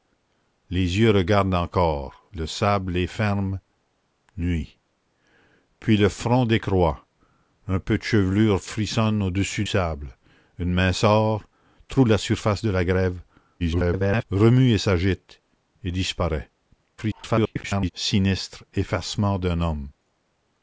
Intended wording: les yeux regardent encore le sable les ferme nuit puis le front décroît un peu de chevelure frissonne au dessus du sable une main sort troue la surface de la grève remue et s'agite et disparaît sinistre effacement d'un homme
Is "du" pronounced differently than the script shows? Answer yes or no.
yes